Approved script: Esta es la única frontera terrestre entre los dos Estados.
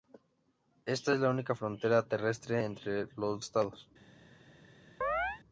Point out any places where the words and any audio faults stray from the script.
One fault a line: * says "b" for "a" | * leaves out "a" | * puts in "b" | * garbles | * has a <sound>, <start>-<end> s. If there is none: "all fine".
* leaves out "dos"
* has a chirp, 5.0-5.4 s